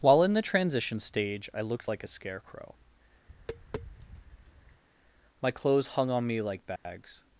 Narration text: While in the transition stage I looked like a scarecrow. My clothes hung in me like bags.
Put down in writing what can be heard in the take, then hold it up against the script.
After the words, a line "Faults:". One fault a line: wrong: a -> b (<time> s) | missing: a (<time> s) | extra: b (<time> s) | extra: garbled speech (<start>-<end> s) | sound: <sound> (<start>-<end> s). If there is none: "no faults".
While in the transition stage I looked like a scarecrow. My clothes hung on me like bags.
Faults:
sound: tap (3.3-4.8 s)
wrong: in -> on (6.1 s)
sound: dropout (6.8-6.9 s)